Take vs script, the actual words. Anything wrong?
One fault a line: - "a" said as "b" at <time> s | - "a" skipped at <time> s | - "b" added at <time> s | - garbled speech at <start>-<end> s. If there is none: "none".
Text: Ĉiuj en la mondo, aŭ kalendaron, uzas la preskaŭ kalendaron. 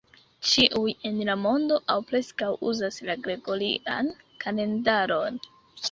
- "kalendaron" said as "preskaŭ" at 2.1 s
- "preskaŭ" said as "gregorian" at 3.3 s